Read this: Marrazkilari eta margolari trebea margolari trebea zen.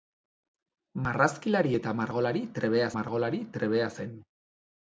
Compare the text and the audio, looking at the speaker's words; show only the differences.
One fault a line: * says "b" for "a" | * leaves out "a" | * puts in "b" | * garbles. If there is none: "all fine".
all fine